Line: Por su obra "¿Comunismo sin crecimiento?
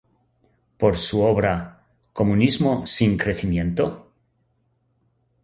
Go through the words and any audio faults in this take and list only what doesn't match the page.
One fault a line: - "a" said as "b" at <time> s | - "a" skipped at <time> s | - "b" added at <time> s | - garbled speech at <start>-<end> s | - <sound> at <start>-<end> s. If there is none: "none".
none